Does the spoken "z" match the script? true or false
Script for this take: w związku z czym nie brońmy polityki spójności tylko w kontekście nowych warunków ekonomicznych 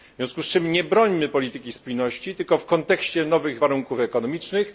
true